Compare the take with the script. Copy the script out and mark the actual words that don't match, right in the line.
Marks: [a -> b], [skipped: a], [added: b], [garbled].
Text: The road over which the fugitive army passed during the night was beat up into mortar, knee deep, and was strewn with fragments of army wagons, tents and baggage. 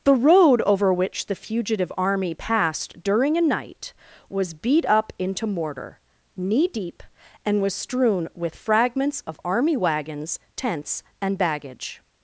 The road over which the fugitive army passed during [the -> a] night was beat up into mortar, knee deep, and was strewn with fragments of army wagons, tents and baggage.